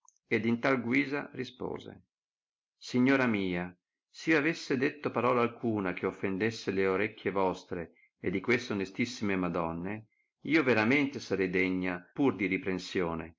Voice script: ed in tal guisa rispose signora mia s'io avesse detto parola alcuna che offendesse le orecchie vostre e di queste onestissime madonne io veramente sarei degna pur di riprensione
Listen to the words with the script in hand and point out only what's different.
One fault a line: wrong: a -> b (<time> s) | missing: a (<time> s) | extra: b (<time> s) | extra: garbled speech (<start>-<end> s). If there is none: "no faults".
no faults